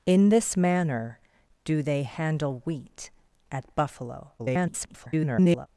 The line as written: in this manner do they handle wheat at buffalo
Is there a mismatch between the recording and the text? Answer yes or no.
yes